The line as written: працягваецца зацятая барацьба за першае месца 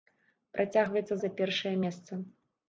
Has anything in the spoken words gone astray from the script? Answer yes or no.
yes